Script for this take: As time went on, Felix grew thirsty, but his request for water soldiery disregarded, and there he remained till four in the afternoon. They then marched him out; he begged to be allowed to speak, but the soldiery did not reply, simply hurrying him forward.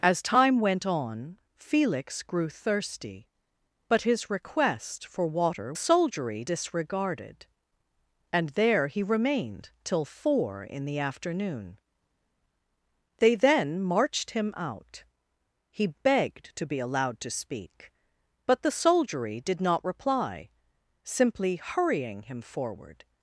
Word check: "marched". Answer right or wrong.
right